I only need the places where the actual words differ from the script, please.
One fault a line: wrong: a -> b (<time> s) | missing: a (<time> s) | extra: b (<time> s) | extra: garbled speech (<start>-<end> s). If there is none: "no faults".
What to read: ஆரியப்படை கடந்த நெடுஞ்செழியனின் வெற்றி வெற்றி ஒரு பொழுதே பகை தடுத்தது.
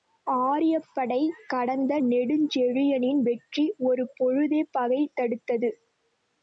missing: வெற்றி (3.7 s)